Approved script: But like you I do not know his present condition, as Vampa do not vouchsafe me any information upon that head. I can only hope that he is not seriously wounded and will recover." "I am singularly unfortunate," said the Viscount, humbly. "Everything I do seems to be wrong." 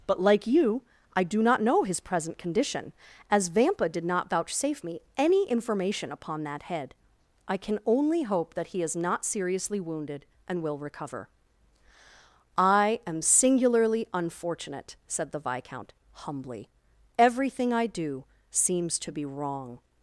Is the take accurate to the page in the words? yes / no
no